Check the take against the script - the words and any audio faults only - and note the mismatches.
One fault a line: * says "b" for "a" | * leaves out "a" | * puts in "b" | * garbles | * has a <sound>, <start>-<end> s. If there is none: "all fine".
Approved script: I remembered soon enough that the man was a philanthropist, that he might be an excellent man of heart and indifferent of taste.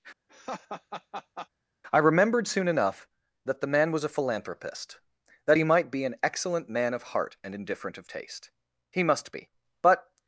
* has a laugh, 0.3-1.5 s
* puts in "He must be But"